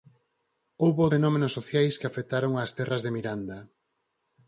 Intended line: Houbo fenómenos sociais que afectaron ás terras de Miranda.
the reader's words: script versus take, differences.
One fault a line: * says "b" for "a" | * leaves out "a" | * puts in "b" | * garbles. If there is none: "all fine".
all fine